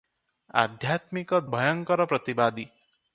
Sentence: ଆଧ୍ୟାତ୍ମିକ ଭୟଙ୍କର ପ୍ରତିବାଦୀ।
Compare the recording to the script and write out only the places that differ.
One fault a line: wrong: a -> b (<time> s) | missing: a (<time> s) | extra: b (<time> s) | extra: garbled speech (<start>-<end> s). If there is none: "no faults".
no faults